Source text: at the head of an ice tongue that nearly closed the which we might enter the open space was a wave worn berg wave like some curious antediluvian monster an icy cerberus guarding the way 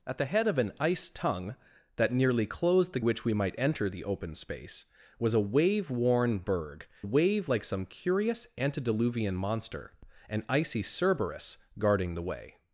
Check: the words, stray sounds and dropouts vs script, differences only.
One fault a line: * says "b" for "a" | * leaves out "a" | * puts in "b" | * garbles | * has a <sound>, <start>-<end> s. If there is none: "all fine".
all fine